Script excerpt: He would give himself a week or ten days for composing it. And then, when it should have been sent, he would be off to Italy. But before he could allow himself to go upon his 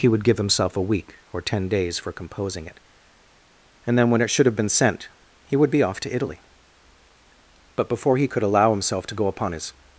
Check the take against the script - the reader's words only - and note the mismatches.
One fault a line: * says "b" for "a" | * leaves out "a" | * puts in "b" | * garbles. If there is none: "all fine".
all fine